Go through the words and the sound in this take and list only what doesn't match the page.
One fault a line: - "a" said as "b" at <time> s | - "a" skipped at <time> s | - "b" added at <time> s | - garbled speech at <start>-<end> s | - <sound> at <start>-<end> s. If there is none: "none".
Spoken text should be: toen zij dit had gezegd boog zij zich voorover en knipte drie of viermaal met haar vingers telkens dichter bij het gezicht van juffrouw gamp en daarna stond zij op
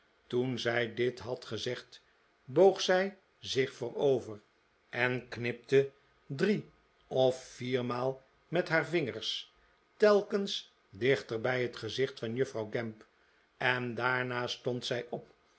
none